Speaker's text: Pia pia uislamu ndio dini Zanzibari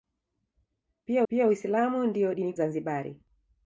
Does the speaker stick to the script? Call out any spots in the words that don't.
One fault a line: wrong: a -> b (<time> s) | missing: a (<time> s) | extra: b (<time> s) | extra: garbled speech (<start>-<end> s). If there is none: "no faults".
no faults